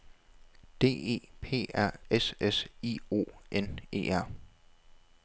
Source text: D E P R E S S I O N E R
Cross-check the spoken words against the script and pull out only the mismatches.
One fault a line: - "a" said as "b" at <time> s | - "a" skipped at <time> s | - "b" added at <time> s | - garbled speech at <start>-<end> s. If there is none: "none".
- "E" skipped at 2.0 s